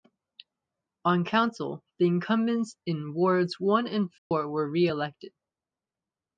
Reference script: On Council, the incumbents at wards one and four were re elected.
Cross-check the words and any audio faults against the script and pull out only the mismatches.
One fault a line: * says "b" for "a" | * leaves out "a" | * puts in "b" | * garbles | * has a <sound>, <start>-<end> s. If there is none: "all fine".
* says "in" for "at"
* has a dropout, 4.2-4.3 s